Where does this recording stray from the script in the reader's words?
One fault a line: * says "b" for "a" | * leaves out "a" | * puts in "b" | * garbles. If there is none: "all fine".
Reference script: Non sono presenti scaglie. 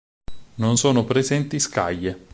all fine